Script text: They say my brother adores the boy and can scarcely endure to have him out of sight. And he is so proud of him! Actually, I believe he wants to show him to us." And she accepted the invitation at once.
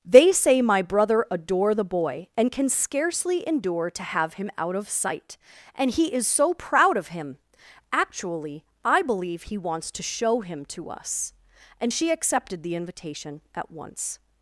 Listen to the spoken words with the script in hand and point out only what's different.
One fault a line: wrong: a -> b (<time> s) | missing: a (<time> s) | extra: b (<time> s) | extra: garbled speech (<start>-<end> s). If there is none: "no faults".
wrong: adores -> adore (1.3 s)